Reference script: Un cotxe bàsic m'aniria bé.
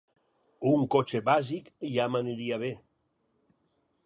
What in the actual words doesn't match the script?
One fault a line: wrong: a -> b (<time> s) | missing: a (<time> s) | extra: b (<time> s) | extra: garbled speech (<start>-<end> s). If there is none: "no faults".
extra: ja (2.0 s)